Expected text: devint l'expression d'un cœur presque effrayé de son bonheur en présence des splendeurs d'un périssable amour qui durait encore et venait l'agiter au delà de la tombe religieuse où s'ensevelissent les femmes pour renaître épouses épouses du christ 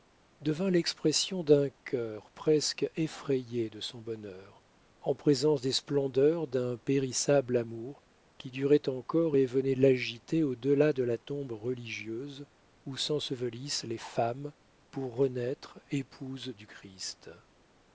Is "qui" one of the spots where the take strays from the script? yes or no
no